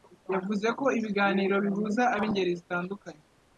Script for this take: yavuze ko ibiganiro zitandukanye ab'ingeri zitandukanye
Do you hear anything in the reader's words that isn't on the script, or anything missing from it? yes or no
yes